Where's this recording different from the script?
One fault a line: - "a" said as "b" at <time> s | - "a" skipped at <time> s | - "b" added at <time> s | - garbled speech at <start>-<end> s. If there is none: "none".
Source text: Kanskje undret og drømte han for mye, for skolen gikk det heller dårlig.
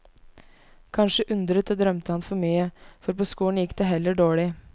- "på" added at 3.1 s